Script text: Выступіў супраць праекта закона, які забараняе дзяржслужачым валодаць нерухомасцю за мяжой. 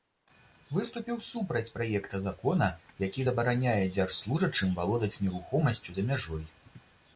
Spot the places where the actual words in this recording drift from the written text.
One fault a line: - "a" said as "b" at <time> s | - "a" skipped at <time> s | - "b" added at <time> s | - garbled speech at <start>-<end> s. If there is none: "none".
none